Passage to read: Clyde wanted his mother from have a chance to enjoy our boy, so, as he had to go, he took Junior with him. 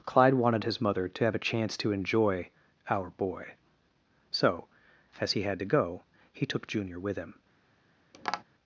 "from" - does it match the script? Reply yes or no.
no